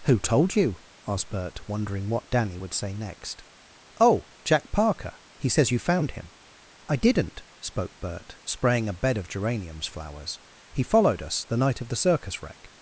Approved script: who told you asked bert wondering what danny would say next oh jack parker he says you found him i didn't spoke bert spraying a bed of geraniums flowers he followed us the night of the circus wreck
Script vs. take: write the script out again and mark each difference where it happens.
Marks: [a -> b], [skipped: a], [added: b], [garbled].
who told you asked bert wondering what danny would say next oh jack parker he says you found him i didn't spoke bert spraying a bed of geraniums flowers he followed us the night of the circus wreck